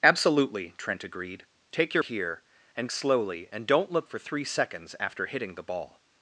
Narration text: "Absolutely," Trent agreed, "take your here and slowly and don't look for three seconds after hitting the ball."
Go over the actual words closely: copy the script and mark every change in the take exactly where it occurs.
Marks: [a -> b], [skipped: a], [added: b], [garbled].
"Absolutely," Trent agreed, "take your here and slowly and don't look for three seconds after hitting the ball."